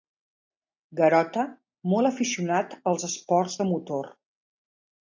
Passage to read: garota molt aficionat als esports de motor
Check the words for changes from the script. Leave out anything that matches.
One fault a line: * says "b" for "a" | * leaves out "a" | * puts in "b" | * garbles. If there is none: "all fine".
all fine